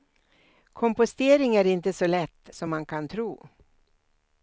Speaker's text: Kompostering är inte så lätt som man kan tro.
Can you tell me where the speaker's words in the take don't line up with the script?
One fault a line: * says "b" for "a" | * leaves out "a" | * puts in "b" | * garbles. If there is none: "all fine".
all fine